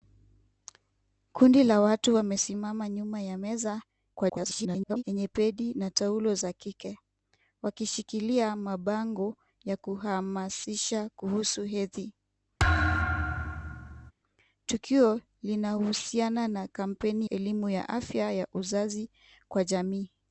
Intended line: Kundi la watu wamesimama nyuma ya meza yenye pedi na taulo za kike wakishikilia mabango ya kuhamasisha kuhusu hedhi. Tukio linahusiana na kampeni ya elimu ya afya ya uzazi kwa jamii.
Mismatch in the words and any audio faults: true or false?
true